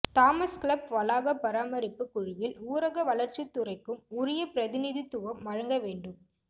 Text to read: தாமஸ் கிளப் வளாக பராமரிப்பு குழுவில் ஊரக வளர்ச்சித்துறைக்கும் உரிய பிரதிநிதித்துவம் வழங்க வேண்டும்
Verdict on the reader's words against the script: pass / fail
pass